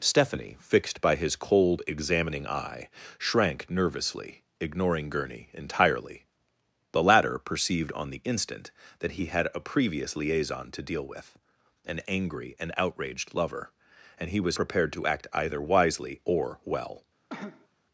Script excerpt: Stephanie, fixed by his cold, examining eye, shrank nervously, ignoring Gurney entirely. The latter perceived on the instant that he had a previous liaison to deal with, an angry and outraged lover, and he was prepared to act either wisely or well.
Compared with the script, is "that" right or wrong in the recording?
right